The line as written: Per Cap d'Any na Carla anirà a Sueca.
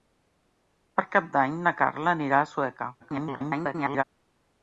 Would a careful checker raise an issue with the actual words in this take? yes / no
yes